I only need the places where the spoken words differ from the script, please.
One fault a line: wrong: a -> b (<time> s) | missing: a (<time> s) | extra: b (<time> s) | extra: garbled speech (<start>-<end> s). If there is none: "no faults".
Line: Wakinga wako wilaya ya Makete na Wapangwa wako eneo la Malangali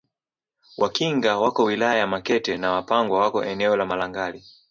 no faults